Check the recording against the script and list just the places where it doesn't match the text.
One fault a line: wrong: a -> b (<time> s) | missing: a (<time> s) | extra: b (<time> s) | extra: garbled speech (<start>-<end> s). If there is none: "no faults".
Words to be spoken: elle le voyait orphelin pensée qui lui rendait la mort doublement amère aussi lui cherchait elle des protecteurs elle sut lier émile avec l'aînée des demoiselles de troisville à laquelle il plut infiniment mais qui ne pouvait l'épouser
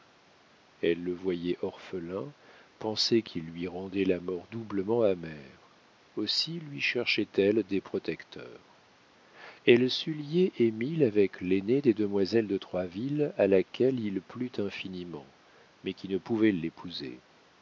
no faults